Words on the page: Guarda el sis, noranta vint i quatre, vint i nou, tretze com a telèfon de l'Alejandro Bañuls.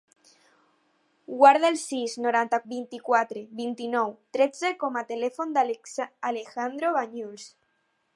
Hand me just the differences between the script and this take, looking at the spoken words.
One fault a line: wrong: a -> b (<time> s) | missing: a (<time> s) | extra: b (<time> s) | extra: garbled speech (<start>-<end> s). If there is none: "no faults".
no faults